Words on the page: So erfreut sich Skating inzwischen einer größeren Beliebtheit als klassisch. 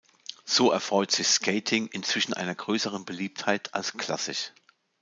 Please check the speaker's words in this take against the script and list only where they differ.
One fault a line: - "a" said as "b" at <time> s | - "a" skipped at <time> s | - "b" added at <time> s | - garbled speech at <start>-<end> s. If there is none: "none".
none